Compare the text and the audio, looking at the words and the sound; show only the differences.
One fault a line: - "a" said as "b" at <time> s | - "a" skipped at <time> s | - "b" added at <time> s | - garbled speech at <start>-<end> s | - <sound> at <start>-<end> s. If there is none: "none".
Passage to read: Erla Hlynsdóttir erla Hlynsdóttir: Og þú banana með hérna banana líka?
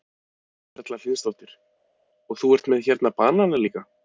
- "erla Hlynsdóttir" skipped at 1.5 s
- "banana" said as "ert" at 2.6 s